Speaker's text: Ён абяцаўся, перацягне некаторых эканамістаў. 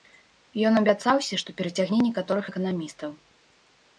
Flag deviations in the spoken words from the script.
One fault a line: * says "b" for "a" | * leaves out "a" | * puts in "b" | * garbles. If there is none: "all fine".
* puts in "што"